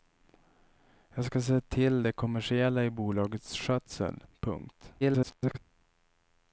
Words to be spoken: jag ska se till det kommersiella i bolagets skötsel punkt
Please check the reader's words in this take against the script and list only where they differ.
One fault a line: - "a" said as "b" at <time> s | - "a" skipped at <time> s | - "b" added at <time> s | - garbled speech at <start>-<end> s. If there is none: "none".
- garbled speech at 5.0-5.6 s